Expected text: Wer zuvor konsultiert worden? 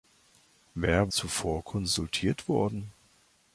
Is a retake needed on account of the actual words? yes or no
no